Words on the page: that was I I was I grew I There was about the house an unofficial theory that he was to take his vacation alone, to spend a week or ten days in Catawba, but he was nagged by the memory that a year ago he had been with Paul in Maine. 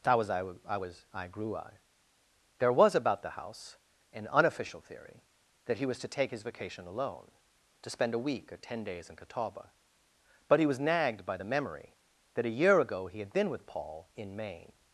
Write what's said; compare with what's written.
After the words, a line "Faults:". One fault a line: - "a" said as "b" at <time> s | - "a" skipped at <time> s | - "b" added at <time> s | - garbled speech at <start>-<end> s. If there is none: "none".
that was I I was I grew I There was about the house an unofficial theory that he was to take his vacation alone, to spend a week or ten days in Catawba, but he was nagged by the memory that a year ago he had been with Paul in Maine.
Faults:
none